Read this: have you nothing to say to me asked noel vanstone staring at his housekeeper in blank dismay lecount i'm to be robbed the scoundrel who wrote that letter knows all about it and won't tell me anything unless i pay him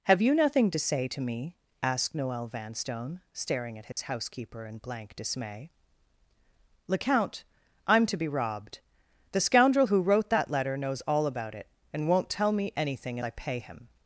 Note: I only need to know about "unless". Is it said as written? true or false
false